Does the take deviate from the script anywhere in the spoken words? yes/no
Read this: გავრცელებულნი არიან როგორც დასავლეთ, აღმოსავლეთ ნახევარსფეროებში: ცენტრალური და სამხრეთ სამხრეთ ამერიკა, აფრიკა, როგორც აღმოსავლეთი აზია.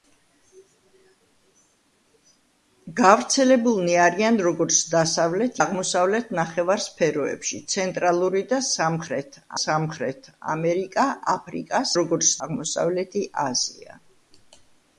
no